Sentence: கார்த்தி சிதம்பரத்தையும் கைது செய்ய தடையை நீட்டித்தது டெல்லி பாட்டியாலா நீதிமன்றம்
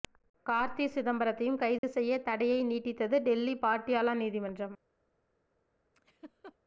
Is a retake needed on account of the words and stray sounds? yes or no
yes